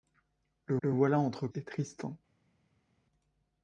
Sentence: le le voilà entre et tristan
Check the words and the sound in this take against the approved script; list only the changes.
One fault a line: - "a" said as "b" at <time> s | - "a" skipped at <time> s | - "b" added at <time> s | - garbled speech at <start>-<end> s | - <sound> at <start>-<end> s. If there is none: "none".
none